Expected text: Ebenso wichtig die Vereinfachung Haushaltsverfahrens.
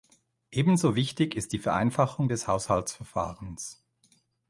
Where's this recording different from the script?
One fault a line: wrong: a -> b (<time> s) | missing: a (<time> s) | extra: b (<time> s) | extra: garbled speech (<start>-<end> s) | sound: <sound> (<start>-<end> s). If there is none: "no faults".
extra: ist (1.4 s)
extra: des (2.3 s)